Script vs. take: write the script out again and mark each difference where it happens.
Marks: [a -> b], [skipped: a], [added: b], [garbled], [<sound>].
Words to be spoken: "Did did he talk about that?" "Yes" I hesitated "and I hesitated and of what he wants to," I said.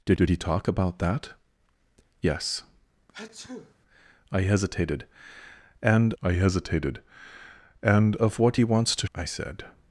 "Did did he talk about that?" "Yes" [sneeze] I hesitated "and I hesitated and of what he wants to," I said.